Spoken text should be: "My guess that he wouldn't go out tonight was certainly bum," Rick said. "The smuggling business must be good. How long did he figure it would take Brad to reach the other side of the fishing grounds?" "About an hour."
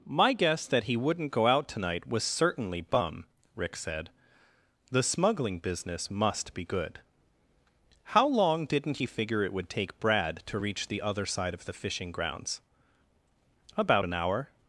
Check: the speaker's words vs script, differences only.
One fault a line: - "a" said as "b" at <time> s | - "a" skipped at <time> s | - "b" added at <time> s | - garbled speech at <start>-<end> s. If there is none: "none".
- "did" said as "didn't" at 8.7 s